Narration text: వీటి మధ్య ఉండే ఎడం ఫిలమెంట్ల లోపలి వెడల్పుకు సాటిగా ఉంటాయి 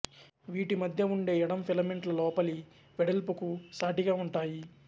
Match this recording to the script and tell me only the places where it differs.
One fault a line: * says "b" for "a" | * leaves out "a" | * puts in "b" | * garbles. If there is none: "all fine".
all fine